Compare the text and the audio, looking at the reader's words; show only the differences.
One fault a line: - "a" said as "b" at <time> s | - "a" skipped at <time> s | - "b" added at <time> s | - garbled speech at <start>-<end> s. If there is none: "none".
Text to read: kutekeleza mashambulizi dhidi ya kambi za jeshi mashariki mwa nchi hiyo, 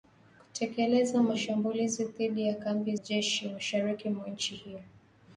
- "za" skipped at 3.0 s